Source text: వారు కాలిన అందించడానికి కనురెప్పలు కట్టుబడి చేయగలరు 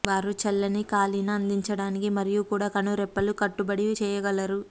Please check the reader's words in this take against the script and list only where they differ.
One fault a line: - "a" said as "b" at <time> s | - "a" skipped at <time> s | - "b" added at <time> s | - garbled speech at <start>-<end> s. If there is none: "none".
- "చల్లని" added at 0.4 s
- "మరియు కూడా" added at 2.1 s